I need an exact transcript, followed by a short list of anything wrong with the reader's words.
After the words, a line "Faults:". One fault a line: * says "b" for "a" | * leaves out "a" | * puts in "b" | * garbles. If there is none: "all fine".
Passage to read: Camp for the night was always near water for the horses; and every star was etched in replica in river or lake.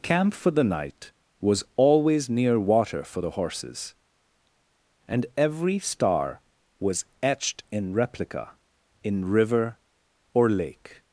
Camp for the night was always near water for the horses; and every star was etched in replica in river or lake.
Faults:
all fine